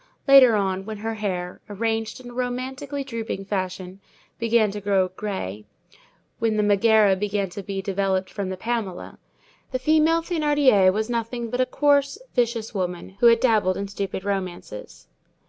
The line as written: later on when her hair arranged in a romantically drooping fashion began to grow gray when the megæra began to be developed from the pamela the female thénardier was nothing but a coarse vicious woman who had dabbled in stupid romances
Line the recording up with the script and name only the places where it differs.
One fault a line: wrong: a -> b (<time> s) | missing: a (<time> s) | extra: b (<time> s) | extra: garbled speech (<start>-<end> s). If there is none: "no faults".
no faults